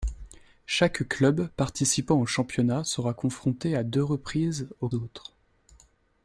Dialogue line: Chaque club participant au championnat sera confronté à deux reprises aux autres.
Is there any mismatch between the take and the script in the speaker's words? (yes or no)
no